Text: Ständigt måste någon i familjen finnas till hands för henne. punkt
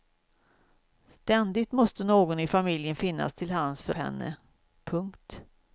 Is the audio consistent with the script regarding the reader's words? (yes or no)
yes